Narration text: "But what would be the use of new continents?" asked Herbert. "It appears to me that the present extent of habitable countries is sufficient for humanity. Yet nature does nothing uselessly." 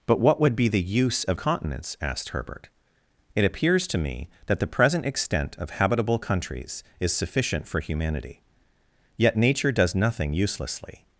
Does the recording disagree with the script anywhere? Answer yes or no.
yes